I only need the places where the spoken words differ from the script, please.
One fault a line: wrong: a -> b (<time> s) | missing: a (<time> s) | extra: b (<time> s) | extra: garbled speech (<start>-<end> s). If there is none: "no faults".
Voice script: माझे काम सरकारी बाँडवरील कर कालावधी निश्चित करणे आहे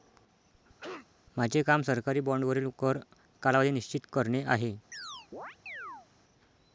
no faults